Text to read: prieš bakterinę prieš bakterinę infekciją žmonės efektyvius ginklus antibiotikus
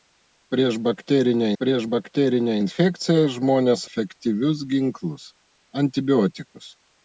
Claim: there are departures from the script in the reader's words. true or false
false